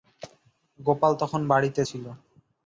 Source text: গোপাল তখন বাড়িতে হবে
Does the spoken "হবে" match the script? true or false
false